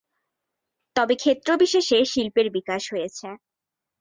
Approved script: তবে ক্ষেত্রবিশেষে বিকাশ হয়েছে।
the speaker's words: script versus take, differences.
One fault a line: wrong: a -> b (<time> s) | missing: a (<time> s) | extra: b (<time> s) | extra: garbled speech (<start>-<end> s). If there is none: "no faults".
extra: শিল্পের (2.1 s)